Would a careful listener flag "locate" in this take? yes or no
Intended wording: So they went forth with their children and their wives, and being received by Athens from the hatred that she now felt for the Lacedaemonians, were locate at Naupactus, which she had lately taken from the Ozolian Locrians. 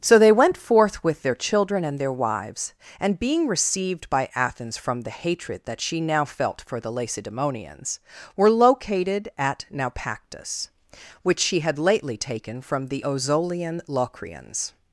yes